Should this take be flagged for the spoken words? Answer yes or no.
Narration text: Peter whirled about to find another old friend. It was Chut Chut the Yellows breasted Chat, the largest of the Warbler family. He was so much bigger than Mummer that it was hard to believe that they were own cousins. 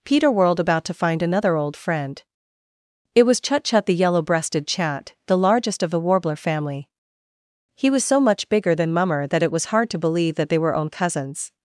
yes